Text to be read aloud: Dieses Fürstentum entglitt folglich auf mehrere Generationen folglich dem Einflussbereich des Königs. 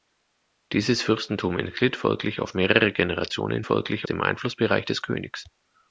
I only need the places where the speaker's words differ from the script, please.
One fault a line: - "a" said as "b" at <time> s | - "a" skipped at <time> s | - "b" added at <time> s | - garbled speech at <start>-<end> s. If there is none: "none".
none